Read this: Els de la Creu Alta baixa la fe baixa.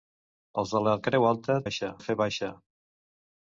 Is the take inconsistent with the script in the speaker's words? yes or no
no